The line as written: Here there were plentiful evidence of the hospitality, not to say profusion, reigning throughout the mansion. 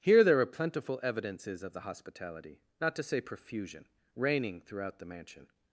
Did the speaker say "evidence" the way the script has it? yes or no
no